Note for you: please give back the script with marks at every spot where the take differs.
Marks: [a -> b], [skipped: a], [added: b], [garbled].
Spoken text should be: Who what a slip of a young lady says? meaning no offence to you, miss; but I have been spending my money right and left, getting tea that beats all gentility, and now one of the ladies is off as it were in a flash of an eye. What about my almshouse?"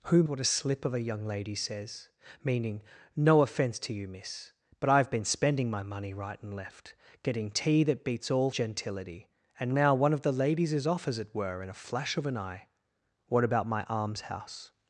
Who what a slip of a young lady says? meaning no offence to you, miss; but I have been spending my money right and left, getting tea that beats all gentility, and now one of the ladies is off as it were in a flash of an eye. What about my almshouse?"